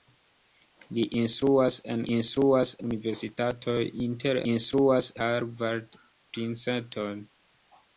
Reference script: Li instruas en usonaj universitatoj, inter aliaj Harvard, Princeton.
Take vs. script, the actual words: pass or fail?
fail